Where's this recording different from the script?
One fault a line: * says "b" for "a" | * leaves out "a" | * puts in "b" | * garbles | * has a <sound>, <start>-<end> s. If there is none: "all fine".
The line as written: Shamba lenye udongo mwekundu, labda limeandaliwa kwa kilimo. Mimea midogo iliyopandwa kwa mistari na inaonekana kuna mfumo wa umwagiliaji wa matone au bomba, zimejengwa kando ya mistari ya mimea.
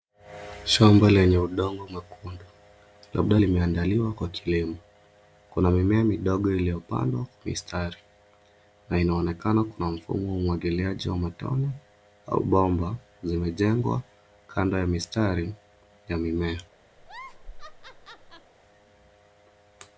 * puts in "Kuna"
* has a laugh, 17.0-18.5 s